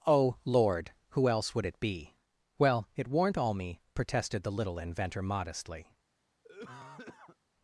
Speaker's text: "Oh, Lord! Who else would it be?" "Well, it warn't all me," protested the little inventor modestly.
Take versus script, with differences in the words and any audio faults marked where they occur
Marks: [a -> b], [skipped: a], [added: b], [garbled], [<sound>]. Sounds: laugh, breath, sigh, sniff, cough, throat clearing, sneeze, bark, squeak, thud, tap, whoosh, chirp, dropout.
"Oh, Lord! Who else would it be?" "Well, it warn't all me," protested the little inventor modestly. [cough]